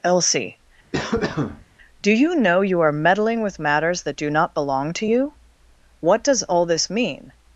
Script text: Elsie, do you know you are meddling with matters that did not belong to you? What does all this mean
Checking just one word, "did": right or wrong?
wrong